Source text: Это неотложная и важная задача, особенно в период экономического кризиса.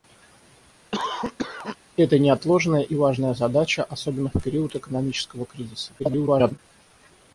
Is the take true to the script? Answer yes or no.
no